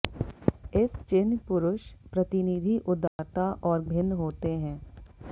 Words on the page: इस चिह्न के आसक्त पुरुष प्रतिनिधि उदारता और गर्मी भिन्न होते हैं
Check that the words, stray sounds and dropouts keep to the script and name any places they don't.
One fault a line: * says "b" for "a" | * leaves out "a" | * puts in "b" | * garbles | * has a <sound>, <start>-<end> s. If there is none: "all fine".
* leaves out "के आसक्त"
* has a dropout, 3.1-3.2 s
* leaves out "गर्मी"